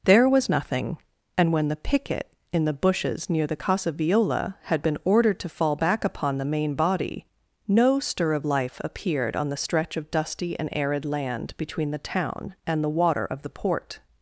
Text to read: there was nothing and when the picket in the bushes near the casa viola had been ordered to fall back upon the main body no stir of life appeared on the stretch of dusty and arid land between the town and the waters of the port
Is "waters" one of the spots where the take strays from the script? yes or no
yes